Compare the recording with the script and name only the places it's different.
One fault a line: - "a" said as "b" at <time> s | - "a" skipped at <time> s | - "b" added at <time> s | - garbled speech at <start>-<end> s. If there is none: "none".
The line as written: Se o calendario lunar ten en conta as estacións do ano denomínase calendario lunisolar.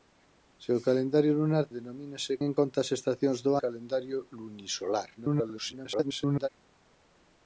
- "ten" said as "denomínase" at 1.8 s
- "ano denomínase" skipped at 3.5 s
- garbled speech at 5.2-6.5 s